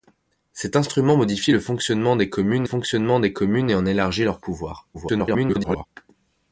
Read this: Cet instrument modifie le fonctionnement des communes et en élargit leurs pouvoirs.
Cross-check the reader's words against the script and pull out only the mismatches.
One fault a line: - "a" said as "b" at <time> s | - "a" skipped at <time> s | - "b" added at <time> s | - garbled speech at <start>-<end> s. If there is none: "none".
- "fonctionnement des communes" added at 2.6 s
- garbled speech at 4.9-5.9 s